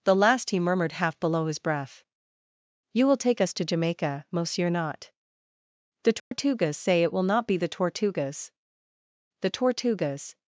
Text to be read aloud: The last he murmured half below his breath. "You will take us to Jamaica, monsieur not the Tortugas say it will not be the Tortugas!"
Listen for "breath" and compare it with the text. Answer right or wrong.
right